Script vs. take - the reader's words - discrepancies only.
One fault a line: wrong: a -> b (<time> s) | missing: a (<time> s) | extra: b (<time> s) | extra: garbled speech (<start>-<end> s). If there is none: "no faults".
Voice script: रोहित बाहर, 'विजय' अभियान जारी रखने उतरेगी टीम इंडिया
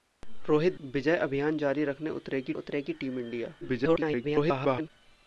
missing: बाहर (0.8 s)
extra: उतरेगी (2.5 s)
extra: garbled speech (3.6-4.9 s)